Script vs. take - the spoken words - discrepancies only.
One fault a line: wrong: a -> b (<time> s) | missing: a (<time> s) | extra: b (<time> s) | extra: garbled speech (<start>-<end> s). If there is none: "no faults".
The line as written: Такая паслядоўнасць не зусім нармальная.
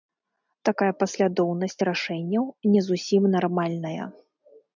extra: рашэнняў (1.9 s)